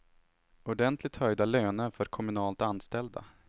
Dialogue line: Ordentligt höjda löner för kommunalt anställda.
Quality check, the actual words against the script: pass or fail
pass